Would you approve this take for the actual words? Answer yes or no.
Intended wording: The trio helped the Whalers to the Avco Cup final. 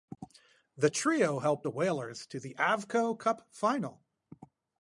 yes